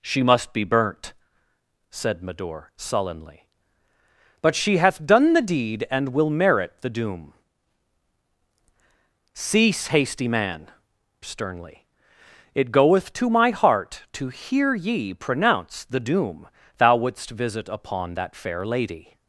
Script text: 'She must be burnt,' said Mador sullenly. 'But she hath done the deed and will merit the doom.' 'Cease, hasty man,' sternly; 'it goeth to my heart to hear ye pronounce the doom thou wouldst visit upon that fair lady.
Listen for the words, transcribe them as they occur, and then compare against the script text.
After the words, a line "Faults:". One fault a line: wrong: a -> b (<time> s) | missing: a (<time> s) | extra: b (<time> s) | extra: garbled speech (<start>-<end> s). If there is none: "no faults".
'She must be burnt,' said Mador sullenly. 'But she hath done the deed and will merit the doom.' 'Cease, hasty man,' sternly; 'it goeth to my heart to hear ye pronounce the doom thou wouldst visit upon that fair lady.
Faults:
no faults